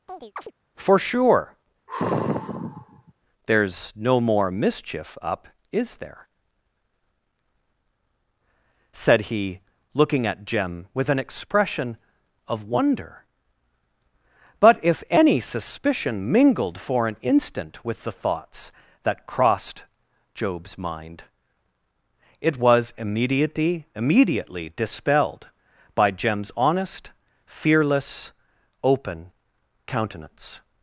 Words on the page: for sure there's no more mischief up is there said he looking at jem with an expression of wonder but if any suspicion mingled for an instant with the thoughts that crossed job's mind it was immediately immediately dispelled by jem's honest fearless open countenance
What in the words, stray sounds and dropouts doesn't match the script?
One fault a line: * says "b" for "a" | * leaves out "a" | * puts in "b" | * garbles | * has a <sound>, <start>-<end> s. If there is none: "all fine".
* has a chirp, 0.1-0.5 s
* has a sigh, 1.9-3.1 s